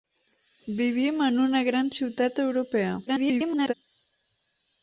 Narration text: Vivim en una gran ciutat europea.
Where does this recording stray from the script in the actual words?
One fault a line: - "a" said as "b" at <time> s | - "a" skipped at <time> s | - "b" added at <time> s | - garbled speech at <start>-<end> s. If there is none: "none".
- garbled speech at 3.1-3.7 s